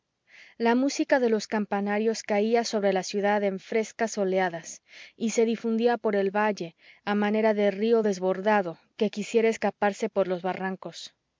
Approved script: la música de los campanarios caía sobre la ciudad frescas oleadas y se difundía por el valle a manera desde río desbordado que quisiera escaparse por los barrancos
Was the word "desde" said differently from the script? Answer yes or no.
yes